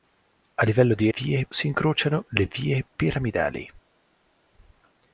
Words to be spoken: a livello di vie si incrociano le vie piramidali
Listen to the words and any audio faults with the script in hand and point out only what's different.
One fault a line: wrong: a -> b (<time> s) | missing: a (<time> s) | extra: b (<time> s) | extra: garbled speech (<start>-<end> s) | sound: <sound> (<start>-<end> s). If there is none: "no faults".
no faults